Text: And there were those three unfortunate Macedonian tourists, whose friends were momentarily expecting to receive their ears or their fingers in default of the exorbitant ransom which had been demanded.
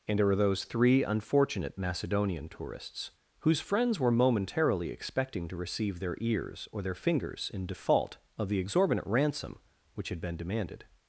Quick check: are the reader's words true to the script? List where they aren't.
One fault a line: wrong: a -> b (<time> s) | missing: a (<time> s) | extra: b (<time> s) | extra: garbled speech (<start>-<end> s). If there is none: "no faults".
no faults